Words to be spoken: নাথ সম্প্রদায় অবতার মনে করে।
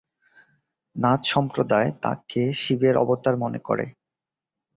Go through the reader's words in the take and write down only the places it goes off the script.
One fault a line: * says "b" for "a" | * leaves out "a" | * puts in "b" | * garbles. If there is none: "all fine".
* puts in "তাঁকে শিবের"